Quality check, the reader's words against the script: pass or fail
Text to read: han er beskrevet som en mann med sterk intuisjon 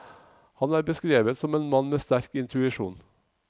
pass